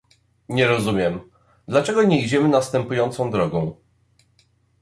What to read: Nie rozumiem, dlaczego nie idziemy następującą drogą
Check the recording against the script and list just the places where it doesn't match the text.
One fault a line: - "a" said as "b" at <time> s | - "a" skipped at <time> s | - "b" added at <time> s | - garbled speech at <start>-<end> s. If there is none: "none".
none